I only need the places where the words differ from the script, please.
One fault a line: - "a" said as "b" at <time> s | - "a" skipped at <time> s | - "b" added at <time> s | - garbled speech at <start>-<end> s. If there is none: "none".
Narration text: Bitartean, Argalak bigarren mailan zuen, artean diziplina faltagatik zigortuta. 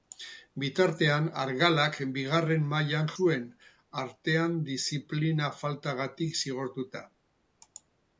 none